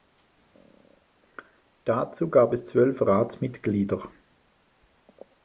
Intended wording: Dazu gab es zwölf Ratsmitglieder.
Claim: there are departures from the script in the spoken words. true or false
false